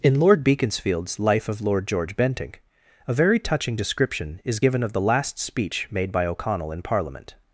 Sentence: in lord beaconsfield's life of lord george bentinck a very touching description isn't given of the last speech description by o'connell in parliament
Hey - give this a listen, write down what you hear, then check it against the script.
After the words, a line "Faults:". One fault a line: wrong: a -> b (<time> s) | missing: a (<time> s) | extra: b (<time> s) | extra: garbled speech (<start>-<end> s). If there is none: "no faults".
in lord beaconsfield's life of lord george bentinck a very touching description is given of the last speech made by o'connell in parliament
Faults:
wrong: isn't -> is (4.4 s)
wrong: description -> made (5.9 s)